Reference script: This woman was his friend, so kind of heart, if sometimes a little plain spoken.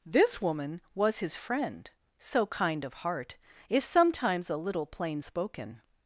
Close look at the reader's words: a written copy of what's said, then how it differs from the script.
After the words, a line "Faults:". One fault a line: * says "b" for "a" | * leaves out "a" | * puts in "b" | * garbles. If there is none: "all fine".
This woman was his friend, so kind of heart, if sometimes a little plain spoken.
Faults:
all fine